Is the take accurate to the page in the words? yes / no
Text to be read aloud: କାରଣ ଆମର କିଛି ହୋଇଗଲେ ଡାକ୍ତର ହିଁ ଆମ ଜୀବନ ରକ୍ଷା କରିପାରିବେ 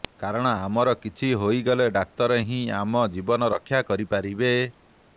yes